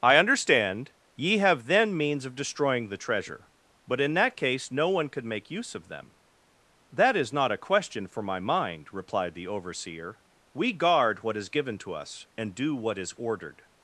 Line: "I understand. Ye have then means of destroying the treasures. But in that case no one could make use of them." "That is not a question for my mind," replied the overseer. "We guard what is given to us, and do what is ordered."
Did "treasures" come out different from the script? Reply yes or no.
yes